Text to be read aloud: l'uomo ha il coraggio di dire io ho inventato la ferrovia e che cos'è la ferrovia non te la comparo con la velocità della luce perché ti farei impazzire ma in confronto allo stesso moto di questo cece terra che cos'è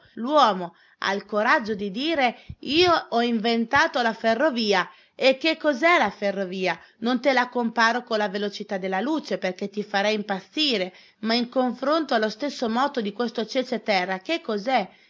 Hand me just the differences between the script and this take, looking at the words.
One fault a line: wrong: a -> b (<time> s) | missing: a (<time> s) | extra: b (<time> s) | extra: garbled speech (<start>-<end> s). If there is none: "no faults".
no faults